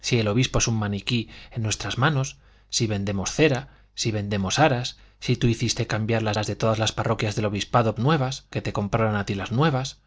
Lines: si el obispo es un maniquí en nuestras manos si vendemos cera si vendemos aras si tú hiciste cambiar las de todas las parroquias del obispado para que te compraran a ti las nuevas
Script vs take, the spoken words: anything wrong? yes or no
yes